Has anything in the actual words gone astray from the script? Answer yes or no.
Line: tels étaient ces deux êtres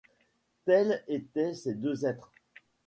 no